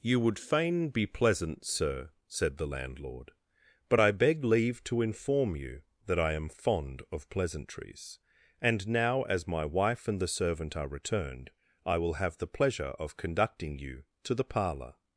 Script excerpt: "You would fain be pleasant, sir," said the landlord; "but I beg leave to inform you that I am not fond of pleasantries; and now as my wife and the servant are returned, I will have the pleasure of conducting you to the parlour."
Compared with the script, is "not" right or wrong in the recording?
wrong